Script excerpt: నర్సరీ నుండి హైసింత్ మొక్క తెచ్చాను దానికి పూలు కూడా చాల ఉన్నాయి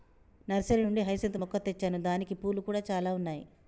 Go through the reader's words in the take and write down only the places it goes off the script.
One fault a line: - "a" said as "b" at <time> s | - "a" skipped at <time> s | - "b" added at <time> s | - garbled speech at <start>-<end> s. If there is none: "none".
none